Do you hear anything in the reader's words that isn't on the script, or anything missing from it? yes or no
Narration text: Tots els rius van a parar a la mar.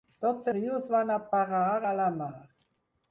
yes